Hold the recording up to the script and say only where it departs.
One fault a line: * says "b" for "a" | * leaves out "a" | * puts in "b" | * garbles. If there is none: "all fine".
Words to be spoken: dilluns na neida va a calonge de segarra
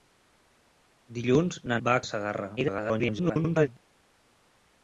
* leaves out "neida"
* leaves out "calonge"
* garbles